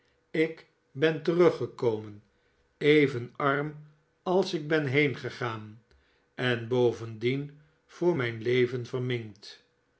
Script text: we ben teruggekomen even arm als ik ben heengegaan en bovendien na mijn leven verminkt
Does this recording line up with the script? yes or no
no